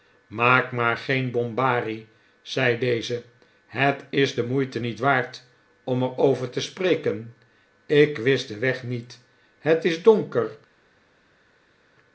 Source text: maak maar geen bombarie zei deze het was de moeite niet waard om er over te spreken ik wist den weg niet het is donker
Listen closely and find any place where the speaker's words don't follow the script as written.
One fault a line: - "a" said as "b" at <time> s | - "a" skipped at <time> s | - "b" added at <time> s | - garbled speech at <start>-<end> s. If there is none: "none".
- "was" said as "is" at 4.1 s